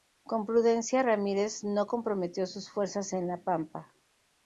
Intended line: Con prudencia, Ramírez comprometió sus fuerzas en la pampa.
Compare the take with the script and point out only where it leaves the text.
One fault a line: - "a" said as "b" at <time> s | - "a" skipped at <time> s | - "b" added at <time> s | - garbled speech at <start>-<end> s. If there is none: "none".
- "no" added at 1.6 s